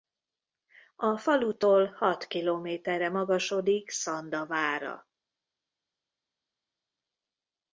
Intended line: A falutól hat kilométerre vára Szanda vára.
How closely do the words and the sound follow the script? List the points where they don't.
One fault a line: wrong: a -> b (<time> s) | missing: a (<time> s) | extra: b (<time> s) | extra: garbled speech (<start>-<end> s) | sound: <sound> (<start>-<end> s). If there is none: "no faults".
wrong: vára -> magasodik (3.1 s)